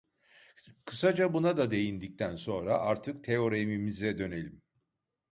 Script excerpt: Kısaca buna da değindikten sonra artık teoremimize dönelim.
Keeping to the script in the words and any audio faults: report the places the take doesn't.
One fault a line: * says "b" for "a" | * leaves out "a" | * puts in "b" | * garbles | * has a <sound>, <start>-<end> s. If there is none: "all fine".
all fine